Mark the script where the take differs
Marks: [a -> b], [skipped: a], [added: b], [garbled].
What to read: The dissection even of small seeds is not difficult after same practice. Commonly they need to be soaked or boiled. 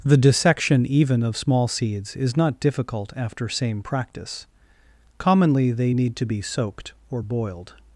The dissection even of small seeds is not difficult after same practice. Commonly they need to be soaked or boiled.